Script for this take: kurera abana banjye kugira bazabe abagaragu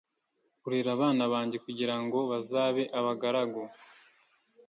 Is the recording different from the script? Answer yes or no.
yes